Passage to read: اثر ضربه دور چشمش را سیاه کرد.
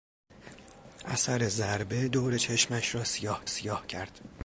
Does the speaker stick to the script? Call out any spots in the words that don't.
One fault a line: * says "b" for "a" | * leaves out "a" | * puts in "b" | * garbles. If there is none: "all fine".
* puts in "سیاه"